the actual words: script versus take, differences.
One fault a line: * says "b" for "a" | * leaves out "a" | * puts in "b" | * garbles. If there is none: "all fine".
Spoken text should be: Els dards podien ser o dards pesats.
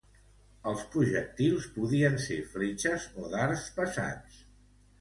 * says "projectils" for "dards"
* puts in "fletxes"